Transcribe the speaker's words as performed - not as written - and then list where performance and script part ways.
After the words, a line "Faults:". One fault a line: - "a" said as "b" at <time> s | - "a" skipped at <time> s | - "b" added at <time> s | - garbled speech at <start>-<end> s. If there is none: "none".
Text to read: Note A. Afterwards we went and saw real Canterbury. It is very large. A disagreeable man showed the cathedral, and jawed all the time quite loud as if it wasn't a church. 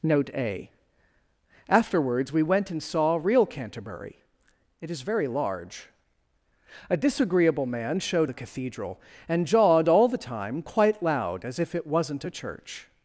Note A. Afterwards we went and saw real Canterbury. It is very large. A disagreeable man showed the cathedral, and jawed all the time quite loud as if it wasn't a church.
Faults:
none